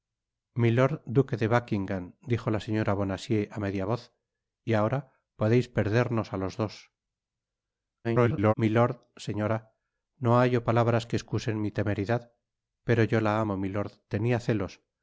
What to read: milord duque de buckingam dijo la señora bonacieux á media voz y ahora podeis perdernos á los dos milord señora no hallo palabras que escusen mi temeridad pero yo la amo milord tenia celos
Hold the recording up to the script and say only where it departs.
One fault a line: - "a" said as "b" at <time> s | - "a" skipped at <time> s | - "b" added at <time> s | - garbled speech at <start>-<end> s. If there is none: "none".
- garbled speech at 8.0-8.5 s